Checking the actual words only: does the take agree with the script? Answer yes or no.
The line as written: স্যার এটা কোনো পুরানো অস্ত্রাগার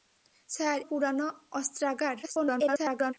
no